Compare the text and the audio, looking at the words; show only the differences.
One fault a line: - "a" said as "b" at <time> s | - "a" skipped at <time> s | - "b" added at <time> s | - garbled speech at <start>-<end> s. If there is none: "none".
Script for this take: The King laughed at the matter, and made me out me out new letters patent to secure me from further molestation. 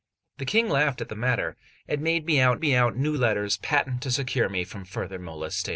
none